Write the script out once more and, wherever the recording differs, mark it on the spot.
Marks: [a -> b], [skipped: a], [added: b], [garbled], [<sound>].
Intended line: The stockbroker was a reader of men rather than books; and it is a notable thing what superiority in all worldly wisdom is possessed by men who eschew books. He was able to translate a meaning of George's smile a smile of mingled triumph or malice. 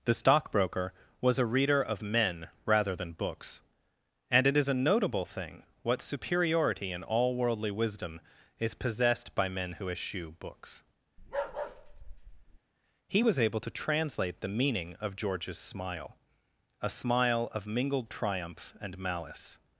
The stockbroker was a reader of men rather than books; and it is a notable thing what superiority in all worldly wisdom is possessed by men who eschew books. [bark] He was able to translate [a -> the] meaning of George's smile a smile of mingled triumph [or -> and] malice.